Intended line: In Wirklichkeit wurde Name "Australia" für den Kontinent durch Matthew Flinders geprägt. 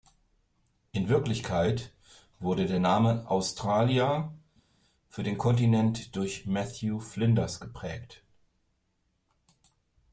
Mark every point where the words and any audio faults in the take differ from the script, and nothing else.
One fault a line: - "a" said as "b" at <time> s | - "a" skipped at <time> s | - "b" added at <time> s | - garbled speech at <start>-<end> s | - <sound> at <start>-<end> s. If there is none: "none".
- "der" added at 2.6 s